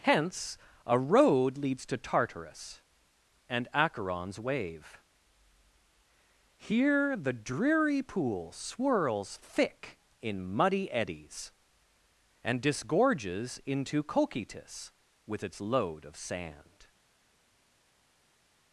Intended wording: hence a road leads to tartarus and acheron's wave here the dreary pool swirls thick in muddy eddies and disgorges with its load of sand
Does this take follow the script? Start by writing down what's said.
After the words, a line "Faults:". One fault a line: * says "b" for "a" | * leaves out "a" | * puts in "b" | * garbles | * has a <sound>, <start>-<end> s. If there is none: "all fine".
hence a road leads to tartarus and acheron's wave here the dreary pool swirls thick in muddy eddies and disgorges into cocytus with its load of sand
Faults:
* puts in "into cocytus"